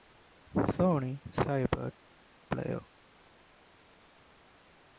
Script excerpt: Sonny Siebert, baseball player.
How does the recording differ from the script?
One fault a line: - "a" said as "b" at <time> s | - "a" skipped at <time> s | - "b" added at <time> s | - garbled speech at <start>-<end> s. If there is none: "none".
- "baseball" skipped at 1.9 s